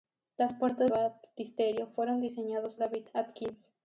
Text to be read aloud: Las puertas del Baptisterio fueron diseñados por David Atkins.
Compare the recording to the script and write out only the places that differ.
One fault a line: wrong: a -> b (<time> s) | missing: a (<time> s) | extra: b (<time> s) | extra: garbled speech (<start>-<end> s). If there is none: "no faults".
missing: del (0.9 s)
missing: por (2.7 s)